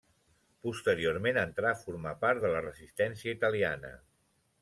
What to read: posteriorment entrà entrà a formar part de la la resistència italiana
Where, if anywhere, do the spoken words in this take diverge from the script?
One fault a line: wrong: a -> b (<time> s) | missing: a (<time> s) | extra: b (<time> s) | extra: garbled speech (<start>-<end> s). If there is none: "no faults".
missing: entrà (1.7 s)
missing: la (2.6 s)